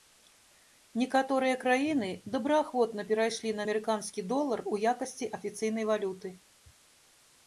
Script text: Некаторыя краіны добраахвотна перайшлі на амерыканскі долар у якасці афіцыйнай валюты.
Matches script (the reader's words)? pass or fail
pass